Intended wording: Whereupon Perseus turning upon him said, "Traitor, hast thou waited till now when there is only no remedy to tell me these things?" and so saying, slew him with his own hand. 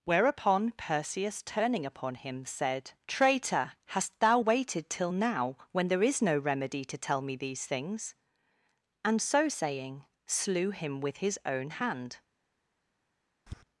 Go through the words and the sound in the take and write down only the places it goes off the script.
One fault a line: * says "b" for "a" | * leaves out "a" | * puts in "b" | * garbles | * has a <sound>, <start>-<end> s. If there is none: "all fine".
* leaves out "only"
* has a tap, 13.5-13.6 s